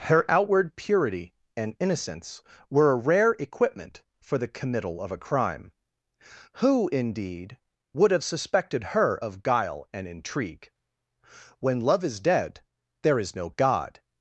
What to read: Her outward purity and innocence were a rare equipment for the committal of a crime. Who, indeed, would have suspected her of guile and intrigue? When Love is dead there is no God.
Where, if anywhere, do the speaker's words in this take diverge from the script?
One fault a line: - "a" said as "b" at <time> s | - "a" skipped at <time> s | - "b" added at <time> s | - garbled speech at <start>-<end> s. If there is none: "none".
none